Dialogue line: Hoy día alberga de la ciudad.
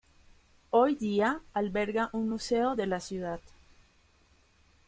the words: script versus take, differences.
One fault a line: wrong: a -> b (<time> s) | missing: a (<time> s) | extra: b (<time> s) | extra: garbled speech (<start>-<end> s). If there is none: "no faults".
extra: un museo (2.1 s)